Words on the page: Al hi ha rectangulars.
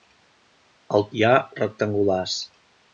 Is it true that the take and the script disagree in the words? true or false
false